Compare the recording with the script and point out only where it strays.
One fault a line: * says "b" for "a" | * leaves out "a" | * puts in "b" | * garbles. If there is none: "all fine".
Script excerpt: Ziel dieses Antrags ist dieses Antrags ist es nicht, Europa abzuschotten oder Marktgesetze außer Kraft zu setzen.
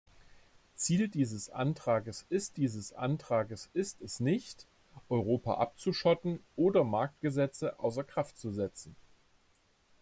all fine